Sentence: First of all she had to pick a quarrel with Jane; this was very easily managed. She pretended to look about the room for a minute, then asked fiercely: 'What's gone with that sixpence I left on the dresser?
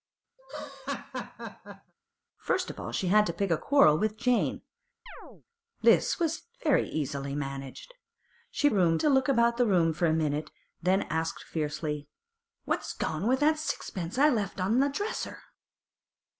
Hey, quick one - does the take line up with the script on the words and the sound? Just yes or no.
no